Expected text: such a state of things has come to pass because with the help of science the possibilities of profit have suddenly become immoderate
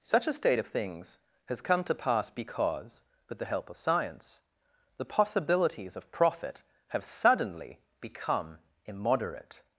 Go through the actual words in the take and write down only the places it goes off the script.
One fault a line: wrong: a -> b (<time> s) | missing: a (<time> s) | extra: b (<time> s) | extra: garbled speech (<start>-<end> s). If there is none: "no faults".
no faults